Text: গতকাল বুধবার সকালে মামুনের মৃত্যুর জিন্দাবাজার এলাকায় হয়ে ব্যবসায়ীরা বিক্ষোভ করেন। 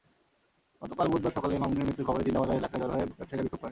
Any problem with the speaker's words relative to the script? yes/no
yes